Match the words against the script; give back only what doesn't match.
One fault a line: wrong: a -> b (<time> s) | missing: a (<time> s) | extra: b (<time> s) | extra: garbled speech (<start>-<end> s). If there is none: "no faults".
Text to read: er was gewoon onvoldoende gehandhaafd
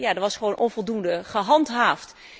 no faults